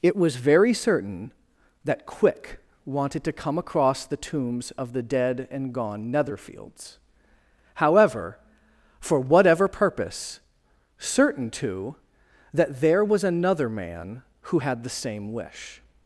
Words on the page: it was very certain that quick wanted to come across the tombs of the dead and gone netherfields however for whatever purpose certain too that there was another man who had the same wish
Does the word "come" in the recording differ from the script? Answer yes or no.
no